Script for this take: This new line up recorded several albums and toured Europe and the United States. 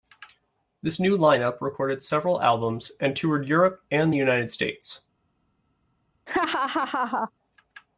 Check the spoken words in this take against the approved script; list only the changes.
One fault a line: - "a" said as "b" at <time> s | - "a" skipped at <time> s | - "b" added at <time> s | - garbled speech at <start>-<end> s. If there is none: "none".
none